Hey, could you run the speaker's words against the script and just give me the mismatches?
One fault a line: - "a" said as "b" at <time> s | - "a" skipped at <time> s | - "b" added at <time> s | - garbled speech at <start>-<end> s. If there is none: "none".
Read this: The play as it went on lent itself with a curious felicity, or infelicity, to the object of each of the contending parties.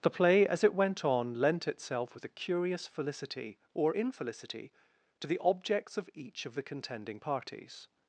- "object" said as "objects" at 5.4 s